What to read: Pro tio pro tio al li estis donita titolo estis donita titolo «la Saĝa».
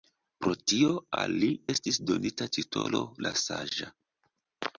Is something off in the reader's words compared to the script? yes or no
yes